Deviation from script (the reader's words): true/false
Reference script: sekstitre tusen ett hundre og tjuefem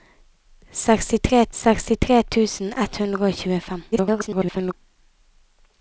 true